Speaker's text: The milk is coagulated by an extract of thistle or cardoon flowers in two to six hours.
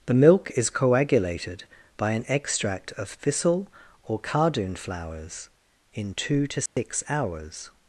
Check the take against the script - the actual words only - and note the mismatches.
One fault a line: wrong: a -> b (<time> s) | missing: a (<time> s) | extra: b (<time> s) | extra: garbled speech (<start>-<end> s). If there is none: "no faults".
no faults